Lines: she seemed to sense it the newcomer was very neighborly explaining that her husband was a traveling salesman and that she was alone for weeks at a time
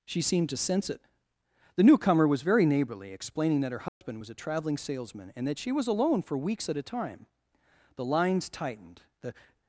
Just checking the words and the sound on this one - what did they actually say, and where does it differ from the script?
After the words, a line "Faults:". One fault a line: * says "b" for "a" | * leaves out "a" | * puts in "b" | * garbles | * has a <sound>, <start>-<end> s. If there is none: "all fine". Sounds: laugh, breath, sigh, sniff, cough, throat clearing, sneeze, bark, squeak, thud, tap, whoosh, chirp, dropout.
she seemed to sense it the newcomer was very neighborly explaining that her husband was a traveling salesman and that she was alone for weeks at a time the lines tightened the
Faults:
* has a dropout, 3.9-4.0 s
* puts in "the lines tightened the"